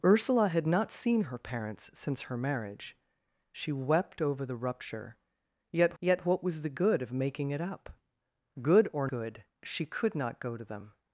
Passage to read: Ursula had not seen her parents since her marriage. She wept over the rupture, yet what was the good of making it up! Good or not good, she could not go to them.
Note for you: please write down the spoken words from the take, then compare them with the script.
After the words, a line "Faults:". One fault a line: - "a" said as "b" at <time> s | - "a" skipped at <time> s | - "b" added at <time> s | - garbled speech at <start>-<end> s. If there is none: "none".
Ursula had not seen her parents since her marriage. She wept over the rupture, yet yet what was the good of making it up! Good or good, she could not go to them.
Faults:
- "yet" added at 6.0 s
- "not" skipped at 9.1 s